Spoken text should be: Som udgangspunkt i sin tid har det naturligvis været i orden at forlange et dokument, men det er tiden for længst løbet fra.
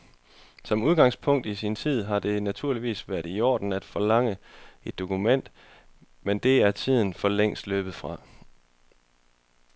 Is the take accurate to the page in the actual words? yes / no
yes